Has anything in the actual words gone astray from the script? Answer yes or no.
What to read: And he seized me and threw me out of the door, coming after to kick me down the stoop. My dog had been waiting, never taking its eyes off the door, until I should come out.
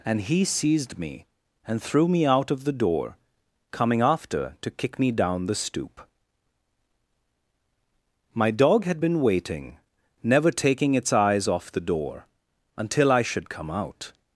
no